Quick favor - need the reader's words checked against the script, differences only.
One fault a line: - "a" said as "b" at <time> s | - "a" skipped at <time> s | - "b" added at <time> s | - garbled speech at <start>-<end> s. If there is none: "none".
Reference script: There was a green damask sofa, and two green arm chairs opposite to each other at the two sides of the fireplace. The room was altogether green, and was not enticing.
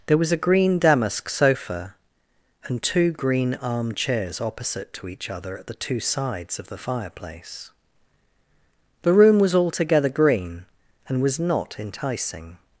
none